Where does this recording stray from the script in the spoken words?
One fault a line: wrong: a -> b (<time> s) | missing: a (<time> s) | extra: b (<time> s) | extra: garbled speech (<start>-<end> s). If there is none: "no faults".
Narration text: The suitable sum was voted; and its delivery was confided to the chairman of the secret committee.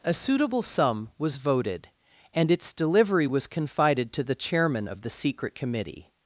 wrong: The -> A (0.0 s)